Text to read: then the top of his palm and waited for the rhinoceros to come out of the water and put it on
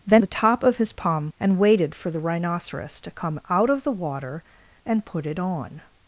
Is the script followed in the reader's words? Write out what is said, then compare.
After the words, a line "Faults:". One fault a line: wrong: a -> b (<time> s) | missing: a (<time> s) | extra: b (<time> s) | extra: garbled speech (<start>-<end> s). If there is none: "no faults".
then the top of his palm and waited for the rhinoceros to come out of the water and put it on
Faults:
no faults